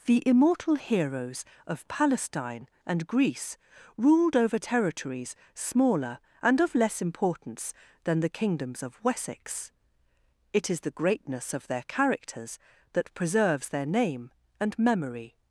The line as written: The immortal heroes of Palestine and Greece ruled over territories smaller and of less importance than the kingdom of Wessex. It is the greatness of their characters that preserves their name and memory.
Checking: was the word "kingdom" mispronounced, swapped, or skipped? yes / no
yes